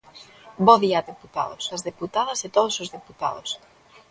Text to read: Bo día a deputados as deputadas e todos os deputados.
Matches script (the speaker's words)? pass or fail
pass